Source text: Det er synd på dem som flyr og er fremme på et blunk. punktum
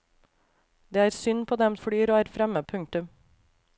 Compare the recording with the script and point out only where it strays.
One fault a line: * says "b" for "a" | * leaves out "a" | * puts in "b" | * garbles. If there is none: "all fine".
* leaves out "som"
* leaves out "på et blunk"